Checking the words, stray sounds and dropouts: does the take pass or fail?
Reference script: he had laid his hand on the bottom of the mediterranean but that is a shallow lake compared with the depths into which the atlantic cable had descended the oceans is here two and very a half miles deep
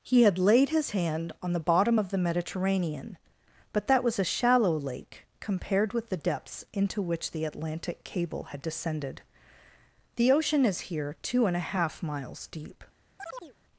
fail